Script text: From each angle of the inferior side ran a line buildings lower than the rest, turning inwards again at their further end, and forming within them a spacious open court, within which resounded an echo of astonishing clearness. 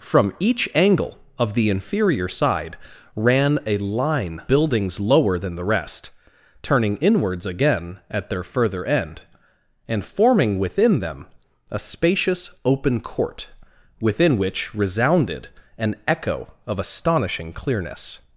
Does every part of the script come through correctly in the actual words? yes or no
yes